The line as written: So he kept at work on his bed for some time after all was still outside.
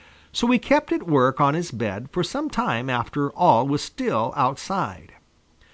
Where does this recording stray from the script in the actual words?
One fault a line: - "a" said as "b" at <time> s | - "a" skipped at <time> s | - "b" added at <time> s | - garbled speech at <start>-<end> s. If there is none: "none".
none